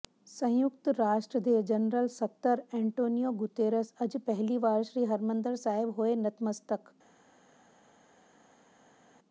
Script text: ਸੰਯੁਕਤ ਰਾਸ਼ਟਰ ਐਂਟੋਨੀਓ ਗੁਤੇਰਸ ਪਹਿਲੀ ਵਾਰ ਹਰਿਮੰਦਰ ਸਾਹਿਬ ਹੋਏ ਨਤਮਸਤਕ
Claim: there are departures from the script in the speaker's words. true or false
true